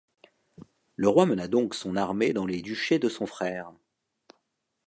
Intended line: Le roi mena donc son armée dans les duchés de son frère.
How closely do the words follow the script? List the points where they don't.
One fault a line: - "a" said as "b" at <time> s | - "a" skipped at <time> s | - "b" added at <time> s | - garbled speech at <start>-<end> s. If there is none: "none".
none